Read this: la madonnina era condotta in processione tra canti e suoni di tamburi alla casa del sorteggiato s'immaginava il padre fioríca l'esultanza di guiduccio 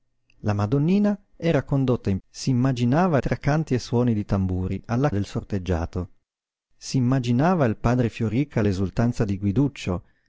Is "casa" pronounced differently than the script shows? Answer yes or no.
yes